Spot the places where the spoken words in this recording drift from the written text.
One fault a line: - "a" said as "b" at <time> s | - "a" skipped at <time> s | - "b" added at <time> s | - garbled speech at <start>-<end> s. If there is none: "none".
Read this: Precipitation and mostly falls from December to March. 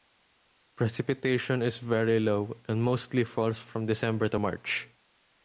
- "is very low" added at 1.6 s